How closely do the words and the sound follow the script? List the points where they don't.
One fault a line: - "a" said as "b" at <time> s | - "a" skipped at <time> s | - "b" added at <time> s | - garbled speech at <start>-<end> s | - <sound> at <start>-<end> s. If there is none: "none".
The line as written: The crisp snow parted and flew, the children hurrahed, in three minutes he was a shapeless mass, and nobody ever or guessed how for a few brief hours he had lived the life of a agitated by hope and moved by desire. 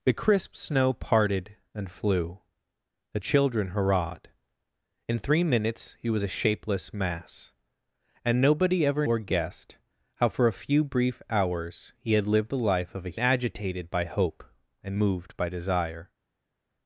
none